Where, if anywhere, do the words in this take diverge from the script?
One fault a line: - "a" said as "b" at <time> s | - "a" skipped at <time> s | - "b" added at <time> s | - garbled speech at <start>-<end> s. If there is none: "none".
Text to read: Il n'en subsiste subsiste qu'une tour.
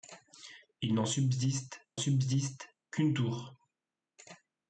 none